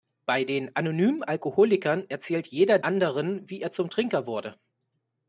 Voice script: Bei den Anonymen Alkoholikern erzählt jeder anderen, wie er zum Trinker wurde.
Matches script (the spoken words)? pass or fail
pass